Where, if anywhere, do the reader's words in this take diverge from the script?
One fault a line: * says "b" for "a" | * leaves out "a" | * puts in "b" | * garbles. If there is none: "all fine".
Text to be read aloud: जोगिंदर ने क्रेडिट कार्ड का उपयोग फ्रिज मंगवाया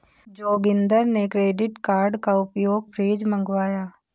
all fine